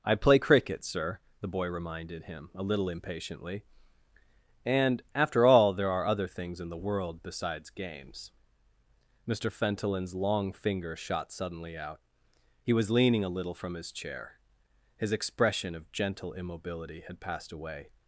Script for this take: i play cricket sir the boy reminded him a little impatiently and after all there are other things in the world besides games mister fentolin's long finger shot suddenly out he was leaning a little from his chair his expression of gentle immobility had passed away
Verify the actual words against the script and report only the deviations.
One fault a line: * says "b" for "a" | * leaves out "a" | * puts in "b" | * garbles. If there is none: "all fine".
all fine